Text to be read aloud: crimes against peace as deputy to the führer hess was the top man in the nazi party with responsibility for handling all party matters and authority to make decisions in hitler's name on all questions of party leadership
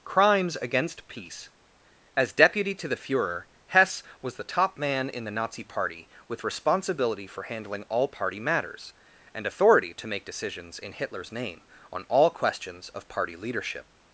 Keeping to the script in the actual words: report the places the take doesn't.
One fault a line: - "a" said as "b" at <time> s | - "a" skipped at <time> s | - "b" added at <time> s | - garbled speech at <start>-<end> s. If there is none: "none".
none